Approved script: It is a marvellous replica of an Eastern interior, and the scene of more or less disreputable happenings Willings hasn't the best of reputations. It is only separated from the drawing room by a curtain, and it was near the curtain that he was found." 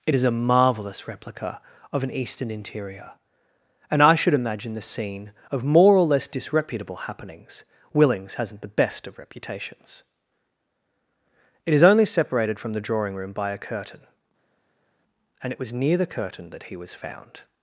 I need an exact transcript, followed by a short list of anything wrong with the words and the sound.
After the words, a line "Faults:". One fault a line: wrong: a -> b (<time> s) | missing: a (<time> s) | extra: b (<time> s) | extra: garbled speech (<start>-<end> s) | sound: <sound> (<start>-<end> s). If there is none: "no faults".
It is a marvellous replica of an Eastern interior, and I should imagine the scene of more or less disreputable happenings Willings hasn't the best of reputations. It is only separated from the drawing room by a curtain, and it was near the curtain that he was found."
Faults:
extra: I should imagine (4.0 s)